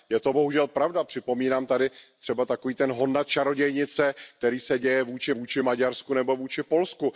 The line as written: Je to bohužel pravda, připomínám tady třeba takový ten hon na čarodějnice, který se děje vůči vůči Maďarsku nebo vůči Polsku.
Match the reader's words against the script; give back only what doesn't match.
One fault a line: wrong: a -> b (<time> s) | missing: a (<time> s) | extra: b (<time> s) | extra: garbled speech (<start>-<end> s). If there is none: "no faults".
no faults